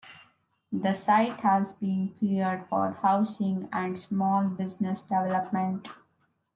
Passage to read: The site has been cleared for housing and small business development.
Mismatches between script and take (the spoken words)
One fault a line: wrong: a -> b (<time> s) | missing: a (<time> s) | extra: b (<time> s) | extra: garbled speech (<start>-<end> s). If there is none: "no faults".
no faults